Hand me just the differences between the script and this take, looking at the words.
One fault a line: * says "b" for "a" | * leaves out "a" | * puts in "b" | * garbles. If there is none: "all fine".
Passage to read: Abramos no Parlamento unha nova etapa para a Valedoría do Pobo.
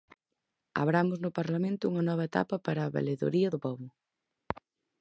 all fine